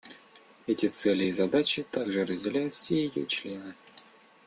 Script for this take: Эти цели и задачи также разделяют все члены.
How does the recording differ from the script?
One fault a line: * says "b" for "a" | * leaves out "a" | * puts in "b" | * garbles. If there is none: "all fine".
* puts in "ее"